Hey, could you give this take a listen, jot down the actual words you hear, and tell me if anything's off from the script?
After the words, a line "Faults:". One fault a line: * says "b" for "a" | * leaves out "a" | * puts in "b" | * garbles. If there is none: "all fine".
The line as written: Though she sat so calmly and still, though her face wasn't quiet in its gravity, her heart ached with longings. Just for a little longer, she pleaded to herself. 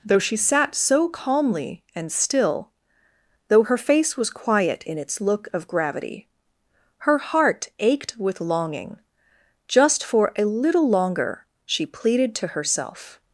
Though she sat so calmly and still, though her face was quiet in its look of gravity, her heart ached with longing. Just for a little longer, she pleaded to herself.
Faults:
* says "was" for "wasn't"
* puts in "look of"
* says "longing" for "longings"